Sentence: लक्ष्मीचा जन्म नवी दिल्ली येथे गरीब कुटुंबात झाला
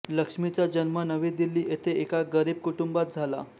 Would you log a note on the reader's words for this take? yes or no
yes